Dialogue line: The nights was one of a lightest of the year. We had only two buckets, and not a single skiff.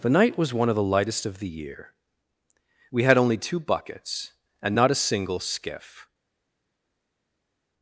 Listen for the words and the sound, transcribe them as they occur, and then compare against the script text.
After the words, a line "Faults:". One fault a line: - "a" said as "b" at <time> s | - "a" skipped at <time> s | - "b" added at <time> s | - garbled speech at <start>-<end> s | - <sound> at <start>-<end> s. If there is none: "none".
The night was one of the lightest of the year. We had only two buckets, and not a single skiff.
Faults:
- "nights" said as "night" at 0.1 s
- "a" said as "the" at 0.8 s